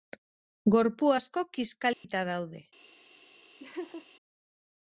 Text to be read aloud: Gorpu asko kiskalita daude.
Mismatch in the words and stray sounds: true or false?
true